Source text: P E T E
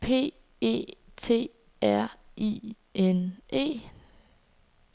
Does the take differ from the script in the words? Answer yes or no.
yes